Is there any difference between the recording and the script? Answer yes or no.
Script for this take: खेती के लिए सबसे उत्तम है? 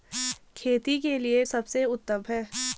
no